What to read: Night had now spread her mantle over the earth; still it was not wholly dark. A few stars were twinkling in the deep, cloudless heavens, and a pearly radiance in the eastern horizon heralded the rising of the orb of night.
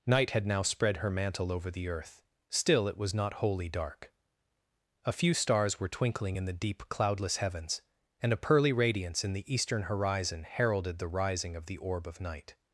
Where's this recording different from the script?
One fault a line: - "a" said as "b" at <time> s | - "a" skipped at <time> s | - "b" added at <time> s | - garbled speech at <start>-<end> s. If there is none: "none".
none